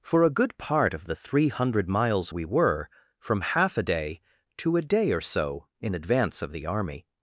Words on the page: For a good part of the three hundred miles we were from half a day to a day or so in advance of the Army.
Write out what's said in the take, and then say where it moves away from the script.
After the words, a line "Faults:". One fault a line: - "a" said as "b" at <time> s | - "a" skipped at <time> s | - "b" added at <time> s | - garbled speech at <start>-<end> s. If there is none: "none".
For a good part of the three hundred miles we were from half a day to a day or so in advance of the Army.
Faults:
none